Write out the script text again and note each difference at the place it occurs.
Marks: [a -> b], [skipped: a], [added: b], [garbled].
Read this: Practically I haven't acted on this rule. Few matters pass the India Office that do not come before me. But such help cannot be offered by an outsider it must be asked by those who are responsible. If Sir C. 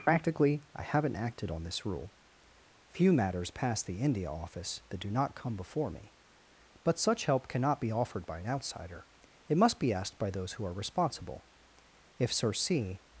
Practically I haven't acted on this rule. Few matters pass the India Office that do not come before me. But such help cannot be offered by an outsider it must be asked by those who are responsible. If Sir C.